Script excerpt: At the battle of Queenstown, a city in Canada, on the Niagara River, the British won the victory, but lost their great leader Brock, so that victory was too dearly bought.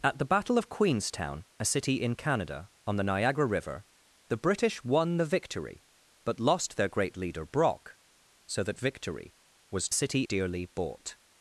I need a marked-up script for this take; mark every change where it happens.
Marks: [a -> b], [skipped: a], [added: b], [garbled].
At the battle of Queenstown, a city in Canada, on the Niagara River, the British won the victory, but lost their great leader Brock, so that victory was [too -> city] dearly bought.